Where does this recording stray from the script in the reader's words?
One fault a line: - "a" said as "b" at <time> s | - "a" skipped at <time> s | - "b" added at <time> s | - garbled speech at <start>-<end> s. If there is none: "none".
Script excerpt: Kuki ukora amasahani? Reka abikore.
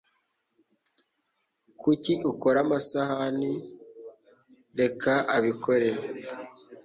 none